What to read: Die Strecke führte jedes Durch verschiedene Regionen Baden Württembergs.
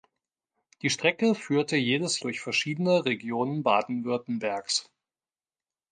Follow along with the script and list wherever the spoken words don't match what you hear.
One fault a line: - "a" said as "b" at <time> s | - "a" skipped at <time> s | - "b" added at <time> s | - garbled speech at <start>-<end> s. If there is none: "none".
none